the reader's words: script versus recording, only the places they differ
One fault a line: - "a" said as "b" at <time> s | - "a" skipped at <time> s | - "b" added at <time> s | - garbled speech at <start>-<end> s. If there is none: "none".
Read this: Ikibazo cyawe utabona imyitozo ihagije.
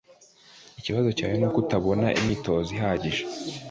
- "nuko" added at 1.4 s